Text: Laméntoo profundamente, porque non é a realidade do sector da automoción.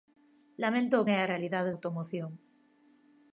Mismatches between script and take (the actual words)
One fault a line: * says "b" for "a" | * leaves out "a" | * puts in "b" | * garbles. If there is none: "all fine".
* leaves out "profundamente porque non"
* leaves out "do sector da"